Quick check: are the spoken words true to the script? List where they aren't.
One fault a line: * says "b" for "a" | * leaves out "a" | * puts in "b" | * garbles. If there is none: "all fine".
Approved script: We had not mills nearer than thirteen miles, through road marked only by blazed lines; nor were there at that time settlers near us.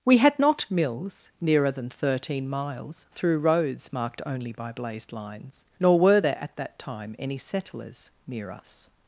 * says "roads" for "road"
* puts in "any"